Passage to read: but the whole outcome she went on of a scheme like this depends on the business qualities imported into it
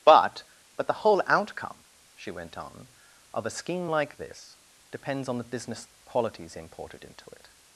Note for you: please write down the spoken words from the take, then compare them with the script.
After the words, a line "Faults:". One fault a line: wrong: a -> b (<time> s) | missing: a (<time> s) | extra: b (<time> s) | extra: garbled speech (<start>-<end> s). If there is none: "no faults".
but but the whole outcome she went on of a scheme like this depends on the business qualities imported into it
Faults:
extra: but (0.8 s)